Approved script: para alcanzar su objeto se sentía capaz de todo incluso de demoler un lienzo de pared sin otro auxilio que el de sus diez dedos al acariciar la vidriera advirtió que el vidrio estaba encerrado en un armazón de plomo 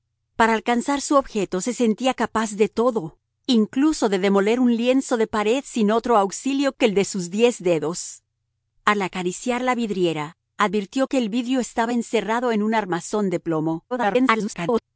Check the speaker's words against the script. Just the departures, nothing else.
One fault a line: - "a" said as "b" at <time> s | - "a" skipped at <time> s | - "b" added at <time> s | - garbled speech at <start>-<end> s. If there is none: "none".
- garbled speech at 13.9-14.8 s